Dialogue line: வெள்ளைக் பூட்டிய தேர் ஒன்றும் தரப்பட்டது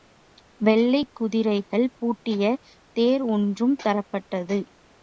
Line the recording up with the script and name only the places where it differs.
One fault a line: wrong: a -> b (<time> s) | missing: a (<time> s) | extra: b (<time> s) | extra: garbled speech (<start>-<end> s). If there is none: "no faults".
extra: குதிரைகள் (1.1 s)